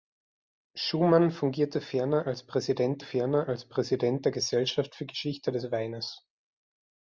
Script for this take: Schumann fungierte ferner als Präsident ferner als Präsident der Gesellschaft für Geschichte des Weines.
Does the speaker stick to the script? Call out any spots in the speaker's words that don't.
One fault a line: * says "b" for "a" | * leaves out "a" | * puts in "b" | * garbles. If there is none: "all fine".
all fine